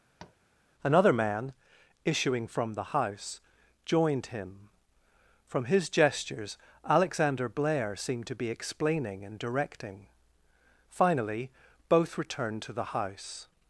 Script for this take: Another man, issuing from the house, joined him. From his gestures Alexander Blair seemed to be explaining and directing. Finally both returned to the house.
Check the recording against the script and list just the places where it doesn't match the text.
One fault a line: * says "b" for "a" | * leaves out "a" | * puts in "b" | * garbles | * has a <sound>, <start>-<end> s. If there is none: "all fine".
* has a tap, 0.2-0.4 s